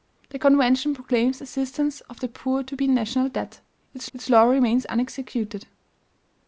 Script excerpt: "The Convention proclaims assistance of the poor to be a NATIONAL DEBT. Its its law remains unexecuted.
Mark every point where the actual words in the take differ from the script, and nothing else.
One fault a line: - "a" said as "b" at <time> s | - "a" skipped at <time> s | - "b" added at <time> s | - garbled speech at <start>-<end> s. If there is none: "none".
none